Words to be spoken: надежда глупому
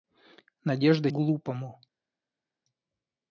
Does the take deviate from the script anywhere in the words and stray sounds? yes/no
no